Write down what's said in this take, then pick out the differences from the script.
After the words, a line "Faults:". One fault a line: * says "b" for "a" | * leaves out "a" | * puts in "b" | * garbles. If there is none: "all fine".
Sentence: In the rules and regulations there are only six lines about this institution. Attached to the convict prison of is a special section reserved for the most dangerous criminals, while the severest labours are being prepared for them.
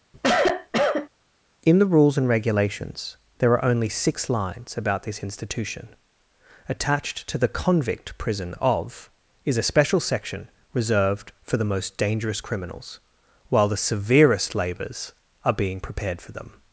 In the rules and regulations there are only six lines about this institution. Attached to the convict prison of is a special section reserved for the most dangerous criminals, while the severest labours are being prepared for them.
Faults:
all fine